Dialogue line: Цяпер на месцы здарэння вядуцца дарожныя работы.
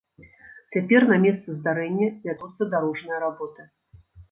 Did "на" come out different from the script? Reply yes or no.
no